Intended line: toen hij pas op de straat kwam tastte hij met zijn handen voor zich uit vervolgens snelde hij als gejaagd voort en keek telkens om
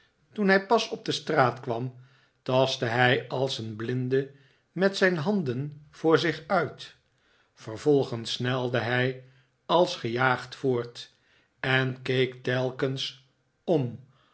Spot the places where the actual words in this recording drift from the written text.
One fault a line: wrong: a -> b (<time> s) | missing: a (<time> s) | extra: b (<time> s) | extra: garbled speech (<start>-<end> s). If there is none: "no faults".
extra: als een blinde (3.3 s)